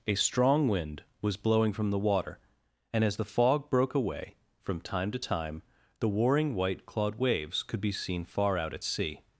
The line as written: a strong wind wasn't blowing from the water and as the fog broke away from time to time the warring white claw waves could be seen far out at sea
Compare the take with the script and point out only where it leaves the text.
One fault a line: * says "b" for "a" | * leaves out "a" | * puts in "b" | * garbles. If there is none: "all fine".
* says "was" for "wasn't"
* says "clawed" for "claw"